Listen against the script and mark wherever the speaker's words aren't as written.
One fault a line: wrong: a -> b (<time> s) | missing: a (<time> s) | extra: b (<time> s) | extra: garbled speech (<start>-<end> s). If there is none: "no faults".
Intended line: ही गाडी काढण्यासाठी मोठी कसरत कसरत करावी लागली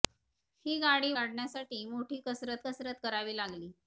no faults